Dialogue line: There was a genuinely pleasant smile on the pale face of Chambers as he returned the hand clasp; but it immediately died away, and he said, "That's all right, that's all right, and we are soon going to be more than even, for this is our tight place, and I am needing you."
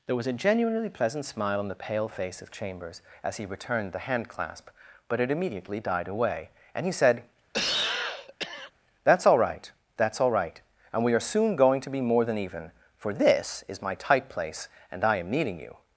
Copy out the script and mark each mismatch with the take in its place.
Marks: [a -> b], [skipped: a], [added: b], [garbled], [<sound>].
There was a genuinely pleasant smile on the pale face of Chambers as he returned the hand clasp; but it immediately died away, and he said, [cough] "That's all right, that's all right, and we are soon going to be more than even, for this is [our -> my] tight place, and I am needing you."